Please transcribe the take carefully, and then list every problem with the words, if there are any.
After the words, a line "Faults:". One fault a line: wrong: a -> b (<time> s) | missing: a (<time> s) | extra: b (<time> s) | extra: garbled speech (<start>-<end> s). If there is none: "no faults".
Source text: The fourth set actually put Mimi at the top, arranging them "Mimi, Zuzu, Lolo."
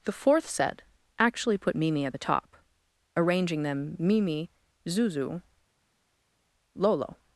The fourth set actually put Mimi at the top, arranging them "Mimi, Zuzu, Lolo."
Faults:
no faults